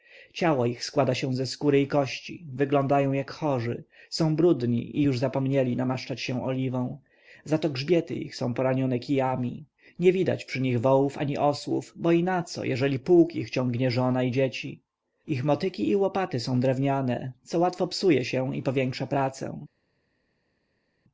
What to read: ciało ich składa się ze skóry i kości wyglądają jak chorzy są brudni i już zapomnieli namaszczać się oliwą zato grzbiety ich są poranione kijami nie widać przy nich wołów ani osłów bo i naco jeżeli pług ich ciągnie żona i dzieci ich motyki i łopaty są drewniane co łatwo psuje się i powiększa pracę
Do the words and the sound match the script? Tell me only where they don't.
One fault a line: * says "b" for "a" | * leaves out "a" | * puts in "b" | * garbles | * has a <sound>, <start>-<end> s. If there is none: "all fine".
all fine